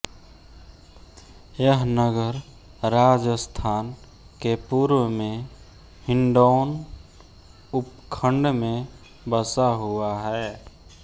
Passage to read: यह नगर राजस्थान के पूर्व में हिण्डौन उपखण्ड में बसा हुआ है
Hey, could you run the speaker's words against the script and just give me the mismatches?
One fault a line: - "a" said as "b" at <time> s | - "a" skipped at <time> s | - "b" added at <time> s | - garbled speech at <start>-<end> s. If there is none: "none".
none